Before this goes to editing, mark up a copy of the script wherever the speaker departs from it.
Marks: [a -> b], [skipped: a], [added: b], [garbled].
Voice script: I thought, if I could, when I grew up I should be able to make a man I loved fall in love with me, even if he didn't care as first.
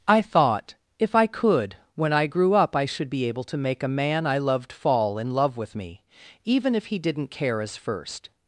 I thought, if I could, when I grew up I should be able to make a man I loved fall in love with me, even if he didn't care as first.